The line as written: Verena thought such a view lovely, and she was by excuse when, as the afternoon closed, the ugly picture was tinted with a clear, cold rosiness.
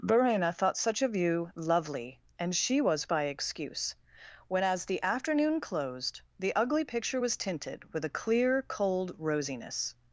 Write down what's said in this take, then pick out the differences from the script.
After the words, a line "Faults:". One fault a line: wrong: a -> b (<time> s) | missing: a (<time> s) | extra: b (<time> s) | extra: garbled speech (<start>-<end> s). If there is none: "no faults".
Verena thought such a view lovely, and she was by excuse when, as the afternoon closed, the ugly picture was tinted with a clear, cold rosiness.
Faults:
no faults